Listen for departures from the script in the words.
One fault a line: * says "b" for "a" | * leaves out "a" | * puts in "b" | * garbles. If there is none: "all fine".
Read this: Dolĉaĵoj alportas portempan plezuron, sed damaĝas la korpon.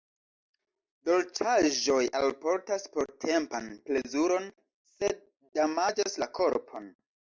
all fine